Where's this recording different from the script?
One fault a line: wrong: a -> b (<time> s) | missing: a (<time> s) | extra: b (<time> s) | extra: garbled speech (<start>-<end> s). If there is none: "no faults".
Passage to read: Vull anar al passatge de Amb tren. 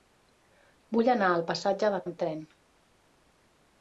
no faults